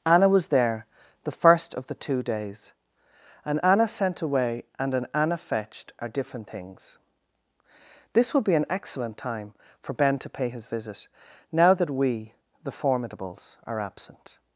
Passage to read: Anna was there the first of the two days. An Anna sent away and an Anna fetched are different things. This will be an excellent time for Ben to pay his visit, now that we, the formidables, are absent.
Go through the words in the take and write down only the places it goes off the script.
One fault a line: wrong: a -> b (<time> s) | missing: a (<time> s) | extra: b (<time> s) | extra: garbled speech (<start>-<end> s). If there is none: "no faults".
no faults